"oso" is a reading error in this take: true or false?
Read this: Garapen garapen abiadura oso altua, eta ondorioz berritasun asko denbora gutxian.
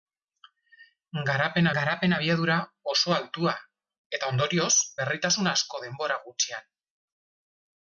false